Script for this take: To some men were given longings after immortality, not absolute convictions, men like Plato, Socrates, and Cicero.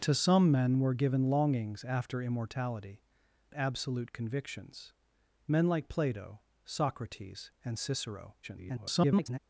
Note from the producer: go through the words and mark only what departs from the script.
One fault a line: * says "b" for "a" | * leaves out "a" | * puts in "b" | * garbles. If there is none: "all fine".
* leaves out "not"
* garbles